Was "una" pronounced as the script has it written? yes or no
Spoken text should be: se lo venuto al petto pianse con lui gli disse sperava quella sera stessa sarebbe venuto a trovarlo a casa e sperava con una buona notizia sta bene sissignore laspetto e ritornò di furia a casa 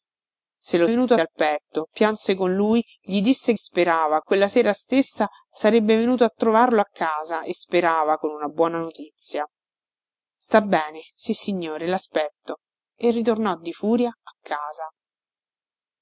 yes